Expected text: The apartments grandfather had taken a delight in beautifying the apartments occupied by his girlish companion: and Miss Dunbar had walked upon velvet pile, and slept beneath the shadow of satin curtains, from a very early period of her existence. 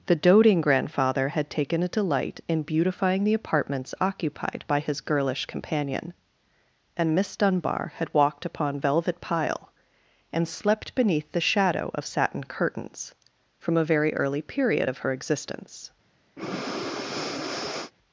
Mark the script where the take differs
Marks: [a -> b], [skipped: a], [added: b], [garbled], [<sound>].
The [apartments -> doting] grandfather had taken a delight in beautifying the apartments occupied by his girlish companion: and Miss Dunbar had walked upon velvet pile, and slept beneath the shadow of satin curtains, from a very early period of her existence. [breath]